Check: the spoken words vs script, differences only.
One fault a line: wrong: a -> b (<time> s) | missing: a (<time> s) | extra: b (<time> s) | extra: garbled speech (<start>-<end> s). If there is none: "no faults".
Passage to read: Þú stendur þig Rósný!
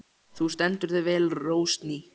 extra: vel (1.1 s)